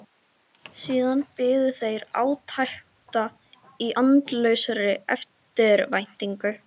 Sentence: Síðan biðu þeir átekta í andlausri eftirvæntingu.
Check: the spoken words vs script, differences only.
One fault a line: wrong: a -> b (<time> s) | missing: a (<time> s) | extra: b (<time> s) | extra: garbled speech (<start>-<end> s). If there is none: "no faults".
no faults